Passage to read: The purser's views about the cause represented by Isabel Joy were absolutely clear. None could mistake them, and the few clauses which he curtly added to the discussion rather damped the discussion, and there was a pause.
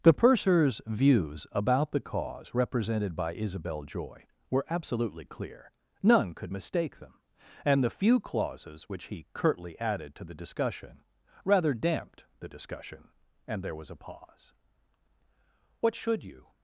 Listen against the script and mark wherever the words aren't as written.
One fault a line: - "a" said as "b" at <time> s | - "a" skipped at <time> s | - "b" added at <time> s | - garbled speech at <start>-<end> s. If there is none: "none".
- "What should you" added at 15.8 s